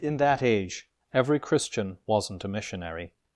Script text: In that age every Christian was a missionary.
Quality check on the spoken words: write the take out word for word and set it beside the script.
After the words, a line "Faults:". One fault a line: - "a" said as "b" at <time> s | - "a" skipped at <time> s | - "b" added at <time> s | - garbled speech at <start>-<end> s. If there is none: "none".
In that age every Christian wasn't a missionary.
Faults:
- "was" said as "wasn't" at 2.1 s